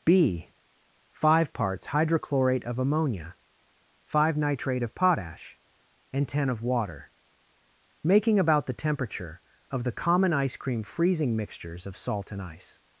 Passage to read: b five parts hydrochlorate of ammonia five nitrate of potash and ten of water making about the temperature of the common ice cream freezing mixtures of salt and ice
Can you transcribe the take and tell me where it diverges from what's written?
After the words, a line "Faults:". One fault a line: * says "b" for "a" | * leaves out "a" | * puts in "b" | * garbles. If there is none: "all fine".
b five parts hydrochlorate of ammonia five nitrate of potash and ten of water making about the temperature of the common ice cream freezing mixtures of salt and ice
Faults:
all fine